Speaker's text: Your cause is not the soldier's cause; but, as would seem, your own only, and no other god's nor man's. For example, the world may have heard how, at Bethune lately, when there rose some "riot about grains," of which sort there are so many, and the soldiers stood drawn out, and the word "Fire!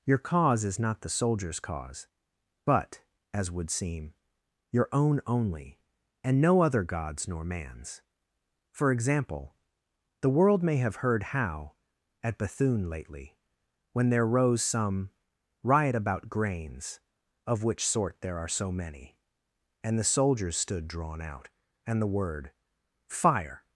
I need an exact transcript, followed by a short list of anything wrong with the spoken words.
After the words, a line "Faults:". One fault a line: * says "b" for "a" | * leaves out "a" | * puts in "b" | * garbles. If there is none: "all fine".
Your cause is not the soldier's cause; but, as would seem, your own only, and no other god's nor man's. For example, the world may have heard how, at Bethune lately, when there rose some "riot about grains," of which sort there are so many, and the soldiers stood drawn out, and the word "Fire!
Faults:
all fine